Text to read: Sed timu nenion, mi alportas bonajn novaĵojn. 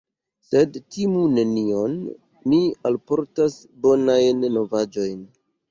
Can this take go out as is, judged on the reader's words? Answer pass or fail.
pass